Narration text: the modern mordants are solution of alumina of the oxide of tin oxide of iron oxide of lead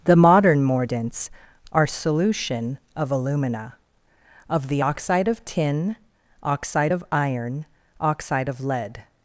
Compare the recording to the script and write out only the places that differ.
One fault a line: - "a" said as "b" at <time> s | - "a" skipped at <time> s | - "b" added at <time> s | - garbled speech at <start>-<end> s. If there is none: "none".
none